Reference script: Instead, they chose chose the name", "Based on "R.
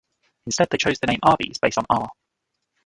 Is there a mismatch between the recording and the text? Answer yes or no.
yes